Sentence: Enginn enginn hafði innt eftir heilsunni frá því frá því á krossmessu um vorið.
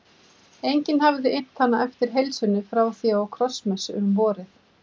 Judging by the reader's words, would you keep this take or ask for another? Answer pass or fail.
fail